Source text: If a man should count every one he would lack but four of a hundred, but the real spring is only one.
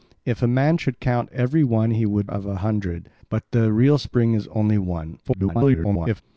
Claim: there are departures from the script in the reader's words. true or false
true